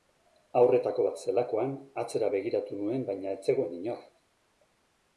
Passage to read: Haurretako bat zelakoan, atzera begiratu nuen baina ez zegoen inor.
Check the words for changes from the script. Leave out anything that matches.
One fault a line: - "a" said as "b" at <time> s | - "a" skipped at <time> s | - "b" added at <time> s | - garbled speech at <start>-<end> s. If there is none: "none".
none